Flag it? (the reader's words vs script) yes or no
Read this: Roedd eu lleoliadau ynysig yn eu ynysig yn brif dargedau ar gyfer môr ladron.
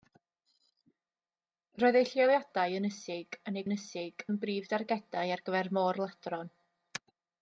no